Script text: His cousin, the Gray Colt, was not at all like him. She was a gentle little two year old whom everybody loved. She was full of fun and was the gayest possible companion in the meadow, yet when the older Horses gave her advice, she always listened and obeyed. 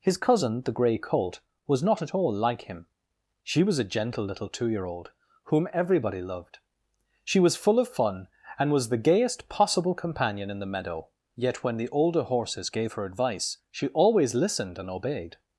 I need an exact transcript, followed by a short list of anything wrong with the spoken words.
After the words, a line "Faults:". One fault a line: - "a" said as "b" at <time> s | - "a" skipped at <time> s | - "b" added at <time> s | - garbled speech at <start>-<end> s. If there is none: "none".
His cousin, the Gray Colt, was not at all like him. She was a gentle little two year old whom everybody loved. She was full of fun and was the gayest possible companion in the meadow, yet when the older Horses gave her advice, she always listened and obeyed.
Faults:
none